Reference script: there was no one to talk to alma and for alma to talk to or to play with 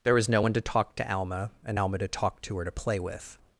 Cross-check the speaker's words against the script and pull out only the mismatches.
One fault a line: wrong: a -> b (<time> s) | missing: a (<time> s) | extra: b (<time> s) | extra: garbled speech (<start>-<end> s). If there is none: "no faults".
missing: for (1.8 s)